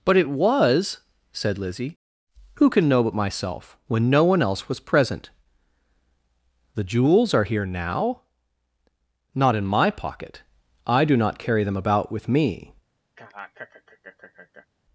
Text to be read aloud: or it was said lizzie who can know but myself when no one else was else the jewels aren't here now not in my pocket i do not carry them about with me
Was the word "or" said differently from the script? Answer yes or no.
yes